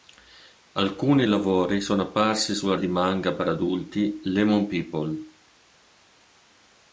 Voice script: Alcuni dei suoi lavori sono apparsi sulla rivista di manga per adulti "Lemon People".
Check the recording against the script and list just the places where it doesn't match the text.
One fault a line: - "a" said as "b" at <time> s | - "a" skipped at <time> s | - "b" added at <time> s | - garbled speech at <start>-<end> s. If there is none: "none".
- "dei suoi" skipped at 1.3 s
- "rivista" skipped at 2.8 s